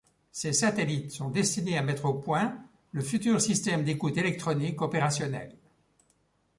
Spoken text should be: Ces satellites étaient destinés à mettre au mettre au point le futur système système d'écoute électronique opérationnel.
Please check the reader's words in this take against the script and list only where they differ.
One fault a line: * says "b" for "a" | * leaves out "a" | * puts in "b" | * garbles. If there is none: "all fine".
* says "sont" for "étaient"
* leaves out "mettre au"
* leaves out "système"